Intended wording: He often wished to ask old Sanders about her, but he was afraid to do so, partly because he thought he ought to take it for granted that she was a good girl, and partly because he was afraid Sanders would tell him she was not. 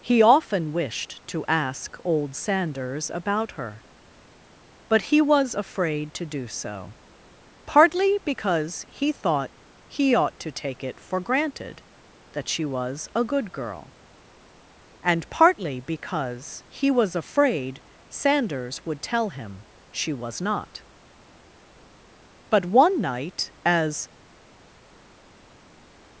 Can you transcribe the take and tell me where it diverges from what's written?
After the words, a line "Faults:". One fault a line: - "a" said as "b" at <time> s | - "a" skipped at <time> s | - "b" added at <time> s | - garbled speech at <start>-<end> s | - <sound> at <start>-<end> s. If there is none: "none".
He often wished to ask old Sanders about her, but he was afraid to do so, partly because he thought he ought to take it for granted that she was a good girl, and partly because he was afraid Sanders would tell him she was not. But one night as
Faults:
- "But one night as" added at 22.5 s